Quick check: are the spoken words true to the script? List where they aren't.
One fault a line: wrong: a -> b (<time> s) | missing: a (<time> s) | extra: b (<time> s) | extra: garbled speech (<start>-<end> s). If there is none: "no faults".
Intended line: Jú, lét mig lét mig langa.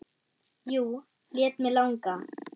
missing: lét mig (1.7 s)